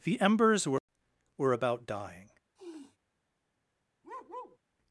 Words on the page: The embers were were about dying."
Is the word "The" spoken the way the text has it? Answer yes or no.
yes